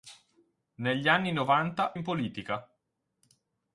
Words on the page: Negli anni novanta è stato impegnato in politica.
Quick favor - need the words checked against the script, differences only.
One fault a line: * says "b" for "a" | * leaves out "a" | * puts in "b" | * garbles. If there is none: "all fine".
* leaves out "è stato impegnato"